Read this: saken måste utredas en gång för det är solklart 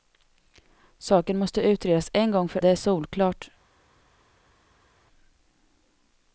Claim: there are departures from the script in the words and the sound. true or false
false